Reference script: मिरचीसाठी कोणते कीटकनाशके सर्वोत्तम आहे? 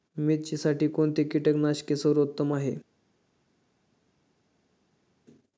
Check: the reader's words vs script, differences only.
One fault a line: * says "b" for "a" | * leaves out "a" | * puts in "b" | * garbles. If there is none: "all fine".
all fine